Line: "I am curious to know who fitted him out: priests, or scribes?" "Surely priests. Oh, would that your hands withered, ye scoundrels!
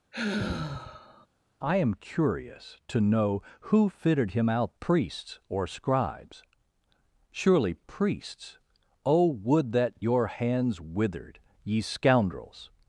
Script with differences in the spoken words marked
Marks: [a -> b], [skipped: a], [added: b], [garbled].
"I am curious to know who fitted him out: priests, or scribes?" "Surely priests. Oh, would that your hands withered, ye scoundrels!